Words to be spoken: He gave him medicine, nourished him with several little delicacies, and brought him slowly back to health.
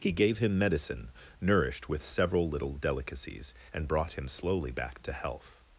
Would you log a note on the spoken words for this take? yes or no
yes